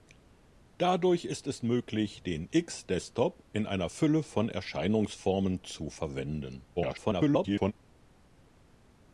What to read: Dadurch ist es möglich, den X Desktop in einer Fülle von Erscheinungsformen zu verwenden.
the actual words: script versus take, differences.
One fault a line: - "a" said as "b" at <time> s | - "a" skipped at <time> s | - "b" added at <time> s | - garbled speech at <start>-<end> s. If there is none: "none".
- garbled speech at 6.8-7.7 s